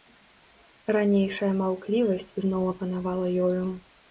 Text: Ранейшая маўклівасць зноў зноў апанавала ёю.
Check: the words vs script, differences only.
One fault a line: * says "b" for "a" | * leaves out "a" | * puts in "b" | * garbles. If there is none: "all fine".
* leaves out "зноў"